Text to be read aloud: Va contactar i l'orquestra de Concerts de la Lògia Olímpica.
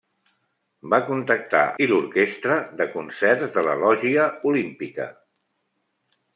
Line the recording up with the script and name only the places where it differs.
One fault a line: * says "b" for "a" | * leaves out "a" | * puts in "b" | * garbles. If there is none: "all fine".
all fine